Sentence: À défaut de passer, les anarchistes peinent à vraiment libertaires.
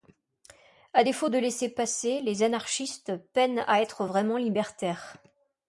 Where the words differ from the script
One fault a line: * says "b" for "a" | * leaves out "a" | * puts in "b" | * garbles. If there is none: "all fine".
* puts in "laissez"
* puts in "être"